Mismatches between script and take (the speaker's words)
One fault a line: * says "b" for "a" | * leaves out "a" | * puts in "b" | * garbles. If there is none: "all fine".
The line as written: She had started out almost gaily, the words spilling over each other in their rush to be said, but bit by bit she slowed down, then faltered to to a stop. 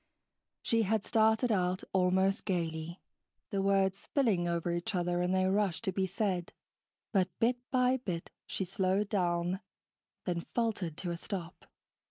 * leaves out "to"